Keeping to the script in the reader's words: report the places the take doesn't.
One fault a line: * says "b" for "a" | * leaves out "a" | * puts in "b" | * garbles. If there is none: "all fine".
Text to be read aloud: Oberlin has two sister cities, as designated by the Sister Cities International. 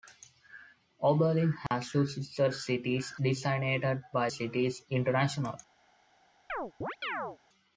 * leaves out "as"
* leaves out "the Sister"